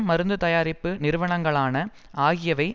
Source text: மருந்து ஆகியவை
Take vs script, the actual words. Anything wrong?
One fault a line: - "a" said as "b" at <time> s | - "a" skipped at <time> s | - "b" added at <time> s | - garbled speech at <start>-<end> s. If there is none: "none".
- "தயாரிப்பு நிறுவனங்களான" added at 0.4 s